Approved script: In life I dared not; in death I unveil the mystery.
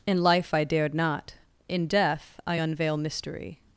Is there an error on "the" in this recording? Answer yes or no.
yes